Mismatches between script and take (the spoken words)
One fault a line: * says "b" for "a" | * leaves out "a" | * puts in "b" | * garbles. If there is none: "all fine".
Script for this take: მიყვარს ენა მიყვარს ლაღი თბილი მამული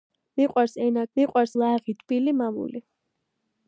all fine